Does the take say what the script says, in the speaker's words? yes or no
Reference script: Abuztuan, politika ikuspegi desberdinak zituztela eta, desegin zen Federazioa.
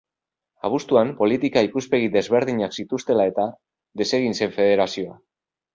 yes